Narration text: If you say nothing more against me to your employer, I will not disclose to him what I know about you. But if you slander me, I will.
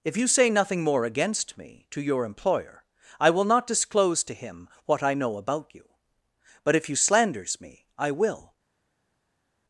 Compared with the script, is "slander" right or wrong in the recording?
wrong